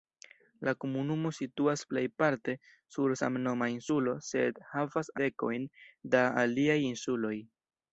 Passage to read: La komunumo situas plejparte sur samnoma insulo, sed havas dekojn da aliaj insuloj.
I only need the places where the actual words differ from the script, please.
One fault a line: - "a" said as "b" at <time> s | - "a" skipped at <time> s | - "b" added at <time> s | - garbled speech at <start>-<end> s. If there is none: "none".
none